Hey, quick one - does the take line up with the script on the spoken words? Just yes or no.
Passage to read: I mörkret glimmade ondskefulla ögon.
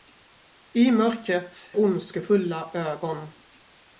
no